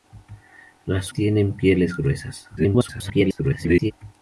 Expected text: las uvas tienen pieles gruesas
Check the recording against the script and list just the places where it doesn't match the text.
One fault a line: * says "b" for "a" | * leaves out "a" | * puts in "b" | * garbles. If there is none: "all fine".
* leaves out "uvas"
* garbles